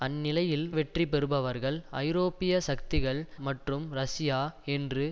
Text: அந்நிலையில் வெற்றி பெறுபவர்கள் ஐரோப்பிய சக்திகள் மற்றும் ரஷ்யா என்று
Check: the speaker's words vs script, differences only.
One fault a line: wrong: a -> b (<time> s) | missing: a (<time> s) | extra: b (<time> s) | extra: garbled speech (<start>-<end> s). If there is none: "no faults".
no faults